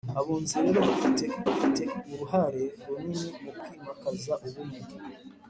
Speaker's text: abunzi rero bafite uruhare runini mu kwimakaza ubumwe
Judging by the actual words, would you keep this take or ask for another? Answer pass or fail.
fail